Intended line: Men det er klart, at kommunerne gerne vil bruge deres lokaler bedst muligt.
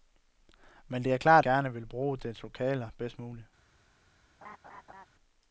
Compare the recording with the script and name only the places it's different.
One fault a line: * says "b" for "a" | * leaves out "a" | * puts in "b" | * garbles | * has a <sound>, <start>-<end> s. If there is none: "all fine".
* leaves out "at kommunerne"
* has a laugh, 4.4-5.1 s